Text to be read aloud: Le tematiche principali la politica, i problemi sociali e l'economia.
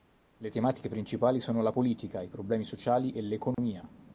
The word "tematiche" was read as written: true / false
true